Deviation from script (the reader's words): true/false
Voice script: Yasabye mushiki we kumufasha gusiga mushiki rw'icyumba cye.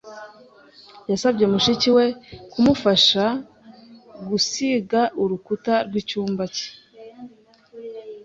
true